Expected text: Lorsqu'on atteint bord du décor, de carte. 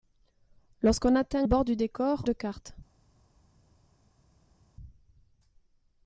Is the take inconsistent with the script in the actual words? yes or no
no